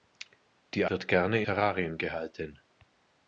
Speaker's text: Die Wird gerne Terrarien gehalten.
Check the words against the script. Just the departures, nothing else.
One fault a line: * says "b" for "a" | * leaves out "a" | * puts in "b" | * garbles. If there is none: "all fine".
all fine